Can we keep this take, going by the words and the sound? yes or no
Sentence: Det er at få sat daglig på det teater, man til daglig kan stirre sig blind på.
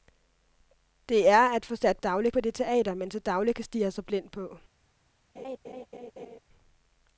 no